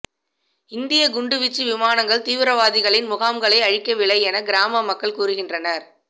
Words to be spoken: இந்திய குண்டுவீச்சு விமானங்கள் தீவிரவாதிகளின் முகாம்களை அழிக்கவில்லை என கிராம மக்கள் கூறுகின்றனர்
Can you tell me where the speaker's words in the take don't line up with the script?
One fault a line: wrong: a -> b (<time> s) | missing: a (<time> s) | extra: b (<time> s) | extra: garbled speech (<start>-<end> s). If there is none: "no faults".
no faults